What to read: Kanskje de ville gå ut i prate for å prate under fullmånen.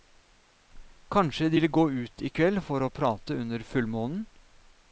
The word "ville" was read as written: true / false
true